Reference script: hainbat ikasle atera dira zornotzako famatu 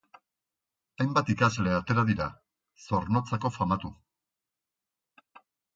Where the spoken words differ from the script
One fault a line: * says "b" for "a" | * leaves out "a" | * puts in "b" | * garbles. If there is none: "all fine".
all fine